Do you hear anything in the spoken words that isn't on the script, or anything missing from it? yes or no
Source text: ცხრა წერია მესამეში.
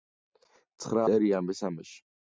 no